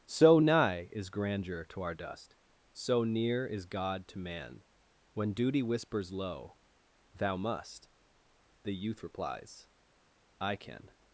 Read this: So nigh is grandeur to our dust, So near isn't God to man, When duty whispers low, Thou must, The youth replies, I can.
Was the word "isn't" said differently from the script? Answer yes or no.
yes